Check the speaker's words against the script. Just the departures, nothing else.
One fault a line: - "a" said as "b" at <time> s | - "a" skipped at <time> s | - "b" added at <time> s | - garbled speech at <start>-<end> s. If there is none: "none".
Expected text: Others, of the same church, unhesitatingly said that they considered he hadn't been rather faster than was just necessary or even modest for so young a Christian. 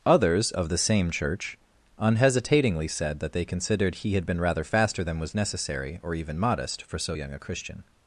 - "hadn't" said as "had" at 4.1 s
- "just" skipped at 5.3 s